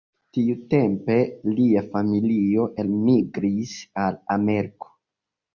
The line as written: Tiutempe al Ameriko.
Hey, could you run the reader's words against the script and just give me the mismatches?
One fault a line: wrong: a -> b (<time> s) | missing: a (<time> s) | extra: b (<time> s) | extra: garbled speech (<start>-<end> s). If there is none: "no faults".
extra: lia familio elmigris (1.6 s)